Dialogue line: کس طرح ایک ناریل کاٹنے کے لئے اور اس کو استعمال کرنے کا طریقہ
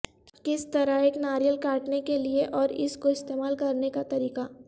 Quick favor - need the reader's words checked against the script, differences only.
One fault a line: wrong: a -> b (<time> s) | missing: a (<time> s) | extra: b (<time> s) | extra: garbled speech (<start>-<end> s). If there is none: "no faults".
no faults